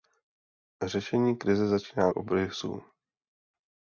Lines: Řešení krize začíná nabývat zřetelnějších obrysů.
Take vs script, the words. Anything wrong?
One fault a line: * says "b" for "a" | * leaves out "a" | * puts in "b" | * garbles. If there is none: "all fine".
* leaves out "nabývat zřetelnějších"